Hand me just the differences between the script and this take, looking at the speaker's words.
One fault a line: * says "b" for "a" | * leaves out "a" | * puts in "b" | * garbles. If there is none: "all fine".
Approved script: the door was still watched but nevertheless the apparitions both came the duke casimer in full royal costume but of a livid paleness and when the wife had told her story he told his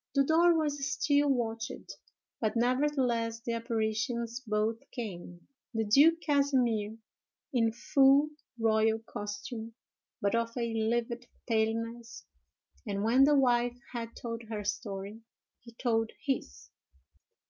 all fine